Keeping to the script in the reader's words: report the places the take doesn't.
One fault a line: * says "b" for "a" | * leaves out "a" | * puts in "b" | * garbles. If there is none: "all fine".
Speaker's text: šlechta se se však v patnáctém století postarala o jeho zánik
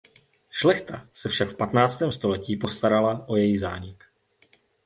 * leaves out "se"
* says "její" for "jeho"